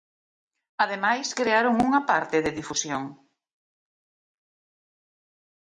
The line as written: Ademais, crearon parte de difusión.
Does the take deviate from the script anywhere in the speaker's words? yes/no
yes